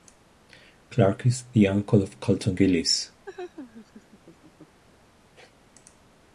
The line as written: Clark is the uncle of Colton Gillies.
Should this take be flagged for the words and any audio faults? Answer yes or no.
yes